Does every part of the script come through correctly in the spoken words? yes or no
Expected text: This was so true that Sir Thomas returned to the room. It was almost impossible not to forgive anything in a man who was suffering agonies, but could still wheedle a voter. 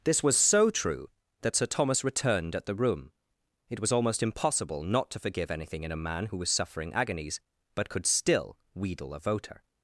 no